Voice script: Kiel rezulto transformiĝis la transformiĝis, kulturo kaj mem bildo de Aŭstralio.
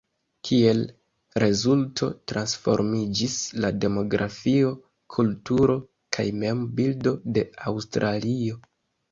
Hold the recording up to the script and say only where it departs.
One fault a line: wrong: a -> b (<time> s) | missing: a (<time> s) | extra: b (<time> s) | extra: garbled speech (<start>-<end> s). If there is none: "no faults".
wrong: transformiĝis -> demografio (3.9 s)